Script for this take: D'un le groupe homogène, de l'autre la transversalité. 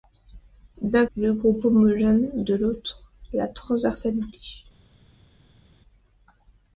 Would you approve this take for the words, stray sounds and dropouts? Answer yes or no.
yes